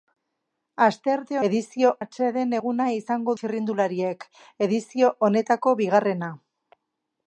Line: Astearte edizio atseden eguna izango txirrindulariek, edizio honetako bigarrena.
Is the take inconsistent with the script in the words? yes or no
no